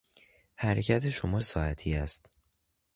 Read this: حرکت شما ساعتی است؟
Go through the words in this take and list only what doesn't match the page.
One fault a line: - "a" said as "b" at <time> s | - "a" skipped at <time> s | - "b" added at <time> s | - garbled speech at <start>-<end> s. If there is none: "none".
none